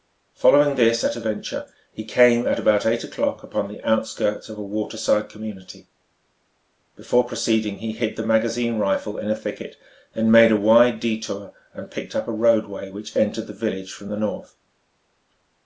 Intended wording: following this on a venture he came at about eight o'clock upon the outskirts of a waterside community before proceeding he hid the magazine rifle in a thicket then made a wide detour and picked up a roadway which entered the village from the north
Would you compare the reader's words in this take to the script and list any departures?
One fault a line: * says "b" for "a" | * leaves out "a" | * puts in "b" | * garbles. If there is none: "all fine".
* says "at" for "on"